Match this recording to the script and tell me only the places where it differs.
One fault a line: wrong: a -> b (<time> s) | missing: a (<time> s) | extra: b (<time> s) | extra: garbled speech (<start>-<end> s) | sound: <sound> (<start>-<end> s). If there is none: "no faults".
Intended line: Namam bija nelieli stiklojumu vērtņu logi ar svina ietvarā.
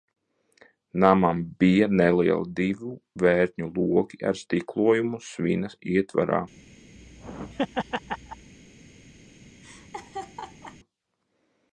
wrong: stiklojumu -> divu (2.6 s)
extra: stiklojumu (4.4 s)
sound: laugh (7.0-8.5 s)
sound: laugh (9.6-10.8 s)